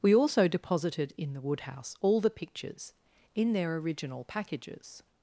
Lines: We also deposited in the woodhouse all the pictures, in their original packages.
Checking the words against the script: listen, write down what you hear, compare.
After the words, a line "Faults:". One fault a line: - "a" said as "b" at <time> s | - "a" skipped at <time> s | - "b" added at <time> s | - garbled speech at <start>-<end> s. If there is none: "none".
We also deposited in the woodhouse all the pictures, in their original packages.
Faults:
none